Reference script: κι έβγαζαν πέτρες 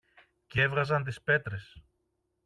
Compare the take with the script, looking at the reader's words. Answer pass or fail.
fail